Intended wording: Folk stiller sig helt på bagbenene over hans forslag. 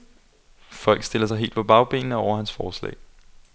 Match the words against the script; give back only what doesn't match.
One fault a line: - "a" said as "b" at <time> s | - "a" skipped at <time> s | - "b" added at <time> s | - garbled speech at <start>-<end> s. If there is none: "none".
none